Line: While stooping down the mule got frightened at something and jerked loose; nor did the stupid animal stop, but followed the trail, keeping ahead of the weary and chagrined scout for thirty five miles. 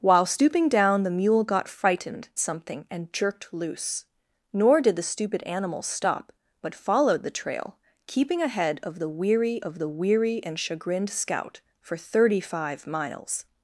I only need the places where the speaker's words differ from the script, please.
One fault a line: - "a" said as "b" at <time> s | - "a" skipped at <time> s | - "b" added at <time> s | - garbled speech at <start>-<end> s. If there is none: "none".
- "at" skipped at 2.3 s
- "of the weary" added at 9.6 s